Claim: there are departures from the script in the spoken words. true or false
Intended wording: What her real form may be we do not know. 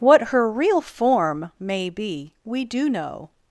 true